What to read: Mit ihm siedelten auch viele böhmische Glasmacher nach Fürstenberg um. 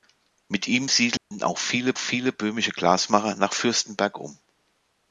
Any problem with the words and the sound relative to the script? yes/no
yes